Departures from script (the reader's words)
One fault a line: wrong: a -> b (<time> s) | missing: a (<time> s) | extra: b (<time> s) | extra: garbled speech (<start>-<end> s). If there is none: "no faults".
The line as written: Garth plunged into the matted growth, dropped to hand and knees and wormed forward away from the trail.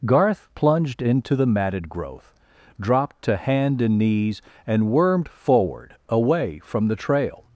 no faults